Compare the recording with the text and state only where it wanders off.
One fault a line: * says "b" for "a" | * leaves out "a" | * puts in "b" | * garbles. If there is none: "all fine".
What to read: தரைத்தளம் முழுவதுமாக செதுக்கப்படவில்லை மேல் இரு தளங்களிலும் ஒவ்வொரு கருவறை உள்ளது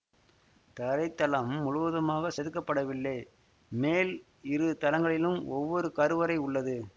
all fine